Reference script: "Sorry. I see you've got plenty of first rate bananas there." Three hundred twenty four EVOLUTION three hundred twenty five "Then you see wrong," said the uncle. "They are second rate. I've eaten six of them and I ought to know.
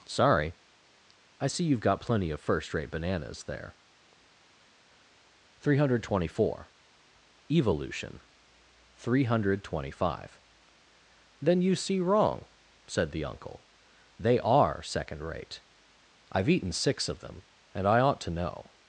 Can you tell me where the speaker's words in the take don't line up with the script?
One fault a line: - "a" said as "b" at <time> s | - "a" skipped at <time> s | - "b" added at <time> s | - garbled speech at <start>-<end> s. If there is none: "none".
none